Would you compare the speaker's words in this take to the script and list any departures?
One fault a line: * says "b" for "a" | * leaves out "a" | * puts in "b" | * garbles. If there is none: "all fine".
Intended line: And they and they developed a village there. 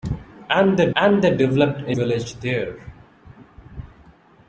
all fine